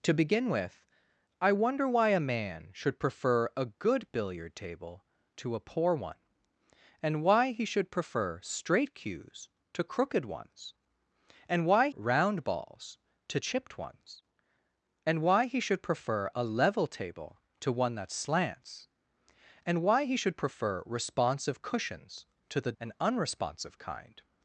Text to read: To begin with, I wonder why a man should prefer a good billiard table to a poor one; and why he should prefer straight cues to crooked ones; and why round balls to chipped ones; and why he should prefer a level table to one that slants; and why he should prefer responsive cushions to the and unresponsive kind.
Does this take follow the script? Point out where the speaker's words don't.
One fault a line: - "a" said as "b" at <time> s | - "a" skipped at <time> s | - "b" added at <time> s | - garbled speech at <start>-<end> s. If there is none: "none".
none